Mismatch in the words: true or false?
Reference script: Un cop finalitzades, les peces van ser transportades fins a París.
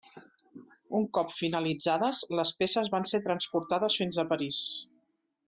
false